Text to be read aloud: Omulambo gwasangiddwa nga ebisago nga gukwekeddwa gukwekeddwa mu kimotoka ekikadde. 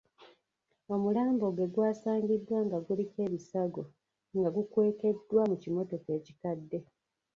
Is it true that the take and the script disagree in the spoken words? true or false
true